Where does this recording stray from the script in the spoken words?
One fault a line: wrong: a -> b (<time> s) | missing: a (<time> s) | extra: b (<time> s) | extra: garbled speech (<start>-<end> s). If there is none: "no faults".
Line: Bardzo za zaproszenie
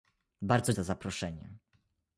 no faults